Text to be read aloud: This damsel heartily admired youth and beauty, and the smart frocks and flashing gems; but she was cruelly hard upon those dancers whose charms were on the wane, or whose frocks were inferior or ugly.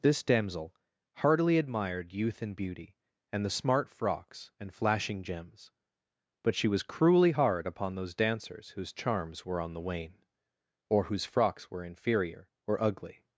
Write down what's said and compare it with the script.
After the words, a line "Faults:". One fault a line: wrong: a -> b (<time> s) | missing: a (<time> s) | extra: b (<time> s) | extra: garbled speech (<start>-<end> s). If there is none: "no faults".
This damsel heartily admired youth and beauty, and the smart frocks and flashing gems; but she was cruelly hard upon those dancers whose charms were on the wane, or whose frocks were inferior or ugly.
Faults:
no faults